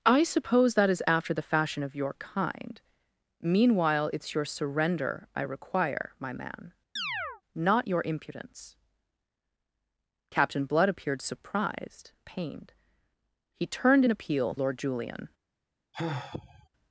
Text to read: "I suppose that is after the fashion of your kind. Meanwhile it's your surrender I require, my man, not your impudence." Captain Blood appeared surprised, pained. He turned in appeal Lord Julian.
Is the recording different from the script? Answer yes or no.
no